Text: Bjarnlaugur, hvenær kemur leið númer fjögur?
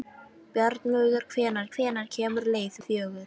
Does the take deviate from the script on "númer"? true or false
true